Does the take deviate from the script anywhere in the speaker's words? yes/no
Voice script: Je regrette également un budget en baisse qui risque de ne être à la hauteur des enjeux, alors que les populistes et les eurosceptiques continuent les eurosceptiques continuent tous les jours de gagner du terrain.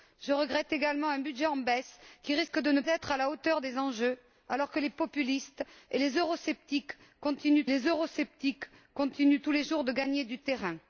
no